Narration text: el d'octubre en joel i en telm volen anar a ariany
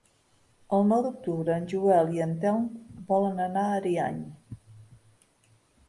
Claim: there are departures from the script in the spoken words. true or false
true